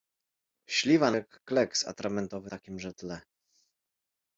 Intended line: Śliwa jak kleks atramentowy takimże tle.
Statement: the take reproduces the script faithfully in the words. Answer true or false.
true